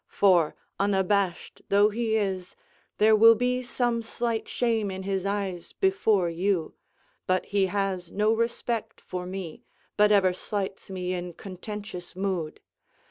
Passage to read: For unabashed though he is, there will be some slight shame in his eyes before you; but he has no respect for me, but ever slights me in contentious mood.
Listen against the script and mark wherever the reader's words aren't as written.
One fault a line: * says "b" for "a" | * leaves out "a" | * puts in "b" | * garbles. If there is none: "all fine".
all fine